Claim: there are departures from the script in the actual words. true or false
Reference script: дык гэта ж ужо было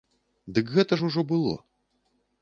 false